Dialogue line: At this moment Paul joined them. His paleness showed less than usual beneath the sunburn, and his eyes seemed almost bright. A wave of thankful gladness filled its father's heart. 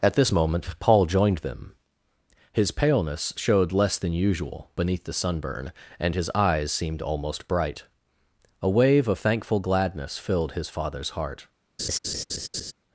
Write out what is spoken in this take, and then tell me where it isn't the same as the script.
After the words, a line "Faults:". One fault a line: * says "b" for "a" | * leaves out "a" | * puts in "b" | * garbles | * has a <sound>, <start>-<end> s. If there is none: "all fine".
At this moment Paul joined them. His paleness showed less than usual beneath the sunburn, and his eyes seemed almost bright. A wave of thankful gladness filled his father's heart.
Faults:
* says "his" for "its"
* has a laugh, 11.8-12.7 s